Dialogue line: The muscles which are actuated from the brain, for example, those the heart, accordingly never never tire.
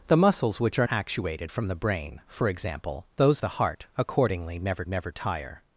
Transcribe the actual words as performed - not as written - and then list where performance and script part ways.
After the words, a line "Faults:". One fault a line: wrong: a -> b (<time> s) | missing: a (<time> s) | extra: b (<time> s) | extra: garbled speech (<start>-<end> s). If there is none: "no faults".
The muscles which are actuated from the brain, for example, those the heart, accordingly never never tire.
Faults:
no faults